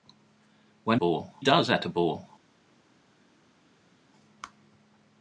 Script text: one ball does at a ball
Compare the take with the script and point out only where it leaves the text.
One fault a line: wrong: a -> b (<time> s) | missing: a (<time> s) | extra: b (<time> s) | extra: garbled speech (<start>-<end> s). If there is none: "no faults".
no faults